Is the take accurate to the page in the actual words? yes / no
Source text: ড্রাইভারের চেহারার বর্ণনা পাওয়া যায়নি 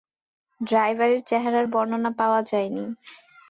yes